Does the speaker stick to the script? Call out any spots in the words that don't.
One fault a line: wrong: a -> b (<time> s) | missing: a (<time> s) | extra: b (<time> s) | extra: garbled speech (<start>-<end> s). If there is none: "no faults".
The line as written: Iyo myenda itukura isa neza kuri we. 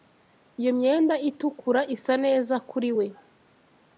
no faults